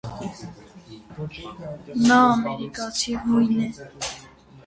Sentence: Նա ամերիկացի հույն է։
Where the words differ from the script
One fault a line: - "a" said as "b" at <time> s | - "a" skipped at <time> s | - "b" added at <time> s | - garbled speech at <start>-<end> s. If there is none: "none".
none